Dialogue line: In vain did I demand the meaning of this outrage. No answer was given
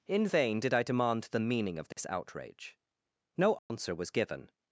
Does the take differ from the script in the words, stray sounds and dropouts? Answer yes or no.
yes